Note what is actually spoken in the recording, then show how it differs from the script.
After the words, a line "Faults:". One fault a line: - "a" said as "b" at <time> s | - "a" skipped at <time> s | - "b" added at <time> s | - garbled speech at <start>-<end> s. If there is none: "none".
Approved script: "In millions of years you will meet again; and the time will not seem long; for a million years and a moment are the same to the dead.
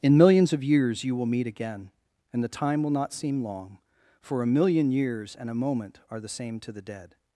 "In millions of years you will meet again; and the time will not seem long; for a million years and a moment are the same to the dead.
Faults:
none